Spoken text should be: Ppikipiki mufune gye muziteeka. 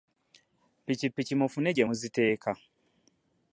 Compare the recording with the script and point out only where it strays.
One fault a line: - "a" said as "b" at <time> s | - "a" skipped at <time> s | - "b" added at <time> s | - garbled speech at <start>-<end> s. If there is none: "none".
none